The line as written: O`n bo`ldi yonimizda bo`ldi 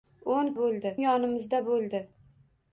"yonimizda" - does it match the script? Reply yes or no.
yes